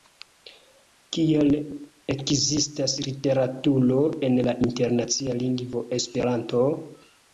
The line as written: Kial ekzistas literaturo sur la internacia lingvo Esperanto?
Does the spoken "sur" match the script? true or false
false